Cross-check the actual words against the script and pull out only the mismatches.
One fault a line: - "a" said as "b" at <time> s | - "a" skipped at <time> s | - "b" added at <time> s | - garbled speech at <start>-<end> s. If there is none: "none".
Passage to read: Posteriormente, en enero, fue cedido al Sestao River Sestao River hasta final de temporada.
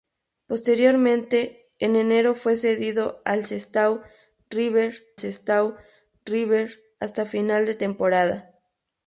none